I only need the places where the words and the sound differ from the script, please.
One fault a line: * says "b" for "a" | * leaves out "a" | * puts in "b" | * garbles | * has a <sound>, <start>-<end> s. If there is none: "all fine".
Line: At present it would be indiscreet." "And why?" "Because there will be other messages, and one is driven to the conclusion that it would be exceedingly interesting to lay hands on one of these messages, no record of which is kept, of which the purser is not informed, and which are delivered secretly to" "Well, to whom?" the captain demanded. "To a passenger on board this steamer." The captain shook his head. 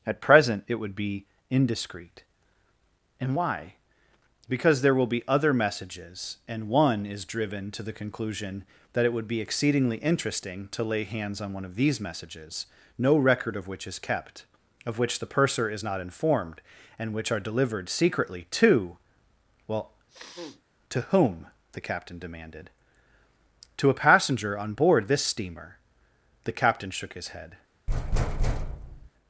* has a sniff, 20.1-20.6 s
* has a thud, 27.9-29.1 s